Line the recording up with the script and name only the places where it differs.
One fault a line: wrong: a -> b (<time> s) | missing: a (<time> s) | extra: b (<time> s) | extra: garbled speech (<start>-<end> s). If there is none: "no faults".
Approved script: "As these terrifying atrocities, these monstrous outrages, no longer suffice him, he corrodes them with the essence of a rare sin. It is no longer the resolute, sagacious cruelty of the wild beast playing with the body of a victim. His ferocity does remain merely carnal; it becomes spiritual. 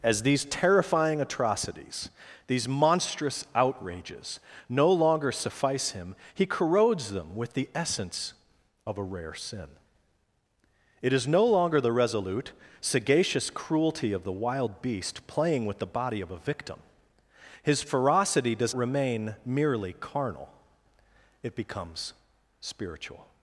no faults